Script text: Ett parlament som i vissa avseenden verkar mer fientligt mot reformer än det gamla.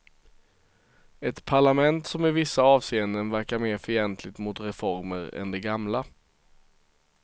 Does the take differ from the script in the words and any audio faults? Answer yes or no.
no